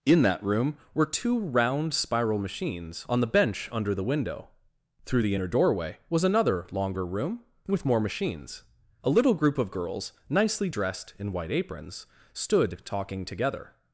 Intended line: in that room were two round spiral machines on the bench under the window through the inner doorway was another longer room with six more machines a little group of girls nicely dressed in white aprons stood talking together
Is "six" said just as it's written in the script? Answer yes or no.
no